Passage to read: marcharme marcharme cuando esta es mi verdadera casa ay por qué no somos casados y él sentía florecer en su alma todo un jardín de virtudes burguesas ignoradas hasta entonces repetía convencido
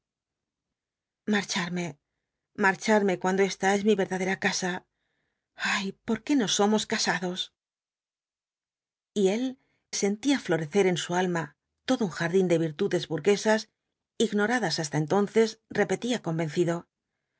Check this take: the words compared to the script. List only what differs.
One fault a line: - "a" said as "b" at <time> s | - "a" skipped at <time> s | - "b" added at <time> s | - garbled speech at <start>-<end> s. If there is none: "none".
none